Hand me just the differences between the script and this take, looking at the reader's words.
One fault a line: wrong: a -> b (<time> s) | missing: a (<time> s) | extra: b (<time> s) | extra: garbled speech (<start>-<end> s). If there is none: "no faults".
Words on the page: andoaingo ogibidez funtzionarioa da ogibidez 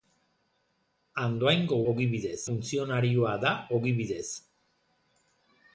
no faults